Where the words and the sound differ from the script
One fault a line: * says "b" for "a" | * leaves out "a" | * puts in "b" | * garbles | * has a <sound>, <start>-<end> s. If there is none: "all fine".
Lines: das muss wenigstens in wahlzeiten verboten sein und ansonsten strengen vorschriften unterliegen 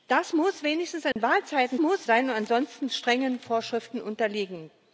* has a dropout, 1.1-1.2 s
* says "muss" for "verboten"